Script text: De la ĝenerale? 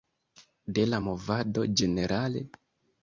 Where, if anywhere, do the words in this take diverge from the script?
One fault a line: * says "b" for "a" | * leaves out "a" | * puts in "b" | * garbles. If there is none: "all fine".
* puts in "movado"